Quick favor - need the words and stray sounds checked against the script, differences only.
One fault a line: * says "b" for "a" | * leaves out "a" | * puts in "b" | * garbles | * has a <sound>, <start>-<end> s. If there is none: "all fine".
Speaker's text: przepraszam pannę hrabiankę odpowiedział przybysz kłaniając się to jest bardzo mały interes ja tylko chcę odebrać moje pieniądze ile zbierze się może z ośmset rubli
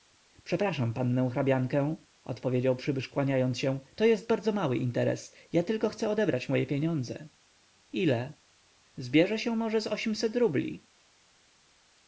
all fine